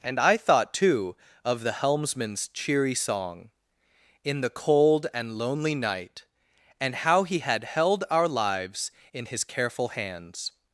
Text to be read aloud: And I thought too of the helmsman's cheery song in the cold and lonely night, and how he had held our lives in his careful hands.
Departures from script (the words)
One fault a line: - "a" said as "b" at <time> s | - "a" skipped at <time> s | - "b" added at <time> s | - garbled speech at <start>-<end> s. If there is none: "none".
none